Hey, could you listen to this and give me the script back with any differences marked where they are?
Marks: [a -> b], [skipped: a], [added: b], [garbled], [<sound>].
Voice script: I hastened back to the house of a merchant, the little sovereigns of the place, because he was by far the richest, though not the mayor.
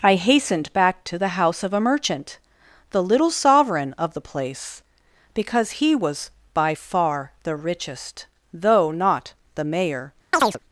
I hastened back to the house of a merchant, the little [sovereigns -> sovereign] of the place, because he was by far the richest, though not the mayor. [chirp]